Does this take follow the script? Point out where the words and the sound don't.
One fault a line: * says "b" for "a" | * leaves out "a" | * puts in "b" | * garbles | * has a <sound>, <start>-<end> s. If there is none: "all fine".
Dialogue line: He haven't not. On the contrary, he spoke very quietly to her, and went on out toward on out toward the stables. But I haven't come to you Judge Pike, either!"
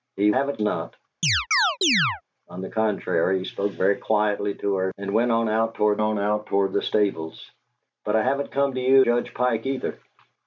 * has a chirp, 1.2-2.2 s